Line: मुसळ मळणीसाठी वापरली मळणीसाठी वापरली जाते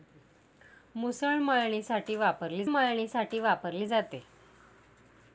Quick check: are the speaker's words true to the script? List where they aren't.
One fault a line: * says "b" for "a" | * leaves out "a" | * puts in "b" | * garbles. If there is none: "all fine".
all fine